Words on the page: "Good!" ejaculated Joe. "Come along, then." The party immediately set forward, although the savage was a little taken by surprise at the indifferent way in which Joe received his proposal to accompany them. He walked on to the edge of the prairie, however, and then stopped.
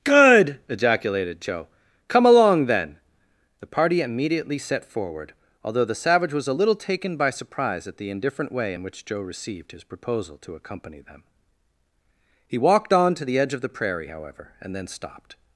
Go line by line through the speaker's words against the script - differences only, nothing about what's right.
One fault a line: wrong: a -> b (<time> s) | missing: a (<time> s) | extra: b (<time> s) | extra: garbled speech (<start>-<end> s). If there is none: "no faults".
no faults